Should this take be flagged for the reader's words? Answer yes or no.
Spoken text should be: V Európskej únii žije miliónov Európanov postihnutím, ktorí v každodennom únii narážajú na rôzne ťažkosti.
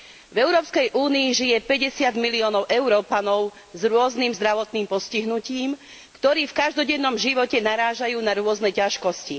yes